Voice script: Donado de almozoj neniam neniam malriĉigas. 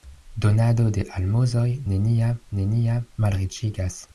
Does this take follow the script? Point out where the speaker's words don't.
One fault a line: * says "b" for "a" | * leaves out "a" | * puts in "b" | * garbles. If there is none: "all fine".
all fine